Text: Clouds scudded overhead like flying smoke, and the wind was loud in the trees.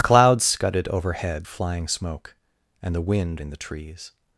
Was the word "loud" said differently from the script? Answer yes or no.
yes